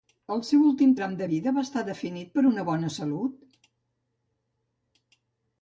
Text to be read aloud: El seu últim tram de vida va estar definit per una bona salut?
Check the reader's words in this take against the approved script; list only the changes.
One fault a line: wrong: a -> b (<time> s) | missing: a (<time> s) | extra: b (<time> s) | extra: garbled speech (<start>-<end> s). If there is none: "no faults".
no faults